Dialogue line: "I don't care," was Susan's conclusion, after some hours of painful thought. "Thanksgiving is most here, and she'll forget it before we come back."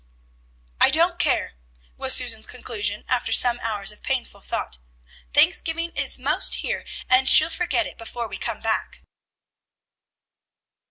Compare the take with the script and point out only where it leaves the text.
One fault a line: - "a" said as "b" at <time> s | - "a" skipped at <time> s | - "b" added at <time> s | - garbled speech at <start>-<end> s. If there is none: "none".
none